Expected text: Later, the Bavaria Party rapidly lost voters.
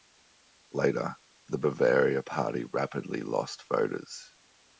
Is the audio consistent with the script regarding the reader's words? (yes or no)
yes